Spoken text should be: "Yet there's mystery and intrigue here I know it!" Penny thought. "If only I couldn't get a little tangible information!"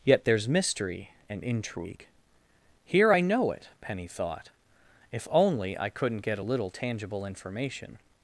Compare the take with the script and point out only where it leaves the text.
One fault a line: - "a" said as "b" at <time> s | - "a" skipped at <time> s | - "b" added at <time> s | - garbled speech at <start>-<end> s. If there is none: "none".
none